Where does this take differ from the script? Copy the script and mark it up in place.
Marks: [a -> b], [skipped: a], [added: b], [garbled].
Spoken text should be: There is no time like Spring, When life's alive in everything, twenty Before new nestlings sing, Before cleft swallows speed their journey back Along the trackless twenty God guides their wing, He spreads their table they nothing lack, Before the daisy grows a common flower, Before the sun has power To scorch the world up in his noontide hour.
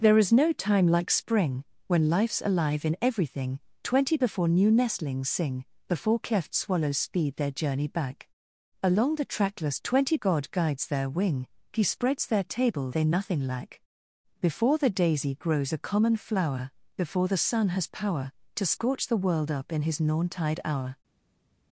There is no time like Spring, When life's alive in everything, twenty Before new nestlings sing, Before cleft swallows speed their journey back Along the trackless twenty God guides their wing, He spreads their table they nothing lack, Before the daisy grows a common flower, Before the sun has power To scorch the world up in his noontide hour.